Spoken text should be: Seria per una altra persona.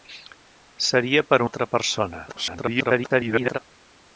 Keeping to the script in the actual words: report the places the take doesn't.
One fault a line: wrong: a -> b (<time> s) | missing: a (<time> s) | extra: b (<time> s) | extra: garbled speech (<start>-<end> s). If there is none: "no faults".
missing: una (1.4 s)
extra: garbled speech (2.3-3.6 s)